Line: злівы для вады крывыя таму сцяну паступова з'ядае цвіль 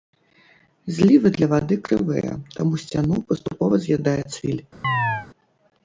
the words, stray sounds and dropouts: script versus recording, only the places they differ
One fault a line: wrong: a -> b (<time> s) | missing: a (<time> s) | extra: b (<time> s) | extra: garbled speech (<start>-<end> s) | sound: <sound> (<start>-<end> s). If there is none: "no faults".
sound: chirp (4.8-5.3 s)